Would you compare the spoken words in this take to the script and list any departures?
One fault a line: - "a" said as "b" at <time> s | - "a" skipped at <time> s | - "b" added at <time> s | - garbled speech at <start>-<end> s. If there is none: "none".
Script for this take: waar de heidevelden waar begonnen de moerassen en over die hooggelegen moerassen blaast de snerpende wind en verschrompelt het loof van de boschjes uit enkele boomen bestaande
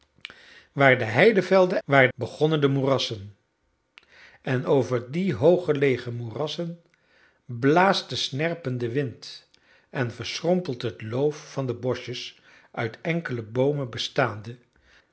none